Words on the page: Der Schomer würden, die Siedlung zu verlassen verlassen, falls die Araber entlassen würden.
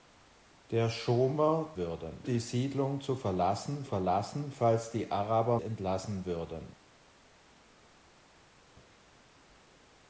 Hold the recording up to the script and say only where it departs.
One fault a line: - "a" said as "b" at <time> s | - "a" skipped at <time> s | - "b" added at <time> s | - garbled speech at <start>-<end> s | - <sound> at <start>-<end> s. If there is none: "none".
none